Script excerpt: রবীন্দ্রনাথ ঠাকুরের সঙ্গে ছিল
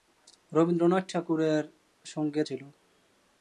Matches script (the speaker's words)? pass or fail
pass